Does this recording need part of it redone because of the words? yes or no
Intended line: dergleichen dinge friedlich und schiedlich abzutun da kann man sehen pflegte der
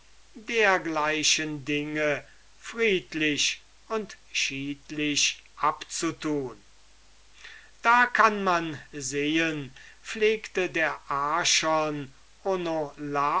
no